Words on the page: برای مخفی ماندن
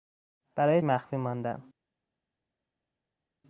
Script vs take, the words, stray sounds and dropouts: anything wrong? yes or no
no